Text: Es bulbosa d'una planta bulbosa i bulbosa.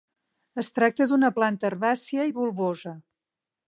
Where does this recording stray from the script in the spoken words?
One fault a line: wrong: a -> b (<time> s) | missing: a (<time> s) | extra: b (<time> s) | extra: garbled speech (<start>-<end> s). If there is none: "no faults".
wrong: bulbosa -> tracta (0.8 s)
wrong: bulbosa -> herbàcia (1.7 s)